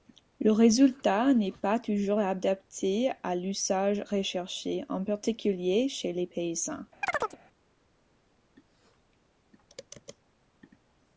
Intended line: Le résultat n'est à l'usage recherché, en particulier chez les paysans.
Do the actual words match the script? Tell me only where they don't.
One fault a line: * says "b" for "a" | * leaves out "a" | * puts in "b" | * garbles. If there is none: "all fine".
* puts in "pas toujours adapté"